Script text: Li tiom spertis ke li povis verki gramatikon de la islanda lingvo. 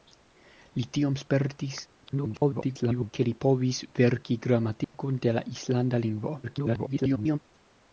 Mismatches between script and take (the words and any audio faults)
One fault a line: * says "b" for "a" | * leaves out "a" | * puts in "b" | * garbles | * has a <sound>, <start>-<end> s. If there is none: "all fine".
* garbles
* has a dropout, 4.8-4.9 s
* garbles